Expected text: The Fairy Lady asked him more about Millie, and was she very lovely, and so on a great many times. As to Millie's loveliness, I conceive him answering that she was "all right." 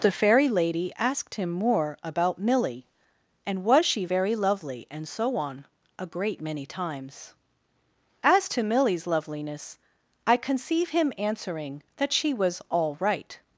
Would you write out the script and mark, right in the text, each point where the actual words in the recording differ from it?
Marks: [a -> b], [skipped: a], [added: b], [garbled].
The Fairy Lady asked him more about Millie, and was she very lovely, and so on a great many times. As to Millie's loveliness, I conceive him answering that she was "all right."